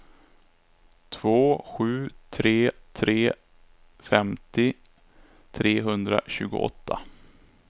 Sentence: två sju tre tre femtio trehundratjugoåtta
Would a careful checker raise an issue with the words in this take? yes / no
no